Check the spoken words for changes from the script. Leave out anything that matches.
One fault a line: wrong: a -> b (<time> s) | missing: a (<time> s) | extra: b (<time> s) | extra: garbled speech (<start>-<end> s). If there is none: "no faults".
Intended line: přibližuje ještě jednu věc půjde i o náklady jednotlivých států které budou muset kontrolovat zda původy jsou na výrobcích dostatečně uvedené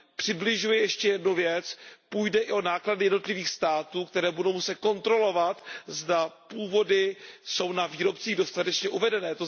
no faults